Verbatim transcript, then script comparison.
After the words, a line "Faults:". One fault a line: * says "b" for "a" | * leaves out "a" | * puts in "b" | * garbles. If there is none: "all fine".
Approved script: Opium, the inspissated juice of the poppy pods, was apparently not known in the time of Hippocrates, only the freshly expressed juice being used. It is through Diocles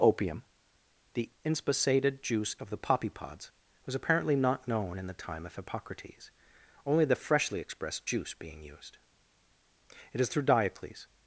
Opium, the inspissated juice of the poppy pods, was apparently not known in the time of Hippocrates, only the freshly expressed juice being used. It is through Diocles
Faults:
all fine